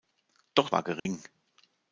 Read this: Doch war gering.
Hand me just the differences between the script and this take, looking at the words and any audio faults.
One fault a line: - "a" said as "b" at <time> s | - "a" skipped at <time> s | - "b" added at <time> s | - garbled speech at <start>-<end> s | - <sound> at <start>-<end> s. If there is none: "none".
- dropout at 1.0-1.1 s